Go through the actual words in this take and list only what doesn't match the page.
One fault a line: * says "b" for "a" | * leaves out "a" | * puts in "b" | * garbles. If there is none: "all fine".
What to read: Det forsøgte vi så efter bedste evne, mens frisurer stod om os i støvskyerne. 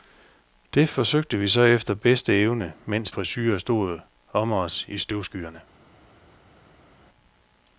all fine